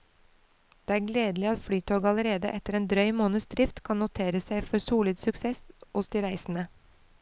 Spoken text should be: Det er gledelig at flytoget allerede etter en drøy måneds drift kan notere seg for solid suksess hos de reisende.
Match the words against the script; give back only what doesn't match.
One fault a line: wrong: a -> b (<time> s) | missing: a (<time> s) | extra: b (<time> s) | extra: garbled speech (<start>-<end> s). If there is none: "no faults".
no faults